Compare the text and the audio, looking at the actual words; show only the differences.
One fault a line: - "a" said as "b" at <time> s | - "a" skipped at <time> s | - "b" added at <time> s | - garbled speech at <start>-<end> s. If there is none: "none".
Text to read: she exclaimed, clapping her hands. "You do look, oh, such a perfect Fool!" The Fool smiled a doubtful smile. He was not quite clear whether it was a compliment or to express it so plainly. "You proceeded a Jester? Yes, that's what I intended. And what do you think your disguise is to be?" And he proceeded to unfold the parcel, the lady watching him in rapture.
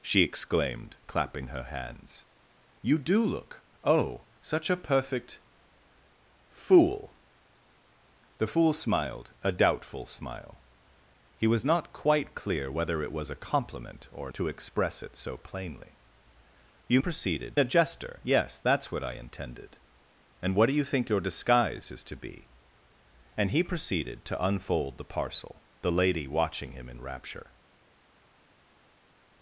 none